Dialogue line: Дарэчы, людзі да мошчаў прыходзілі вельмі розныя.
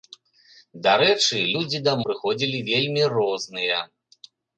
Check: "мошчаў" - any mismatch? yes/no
yes